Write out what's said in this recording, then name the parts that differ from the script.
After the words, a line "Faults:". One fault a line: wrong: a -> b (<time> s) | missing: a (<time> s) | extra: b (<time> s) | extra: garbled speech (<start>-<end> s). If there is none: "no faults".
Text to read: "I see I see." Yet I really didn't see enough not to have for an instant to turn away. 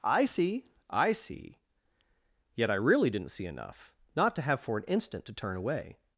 "I see I see." Yet I really didn't see enough not to have for an instant to turn away.
Faults:
no faults